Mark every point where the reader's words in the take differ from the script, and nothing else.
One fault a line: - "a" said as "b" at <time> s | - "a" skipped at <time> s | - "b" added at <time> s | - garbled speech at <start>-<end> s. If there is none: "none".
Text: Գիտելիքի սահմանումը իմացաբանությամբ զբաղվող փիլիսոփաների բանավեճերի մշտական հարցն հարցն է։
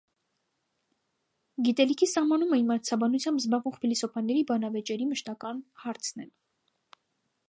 - "հարցն" skipped at 6.3 s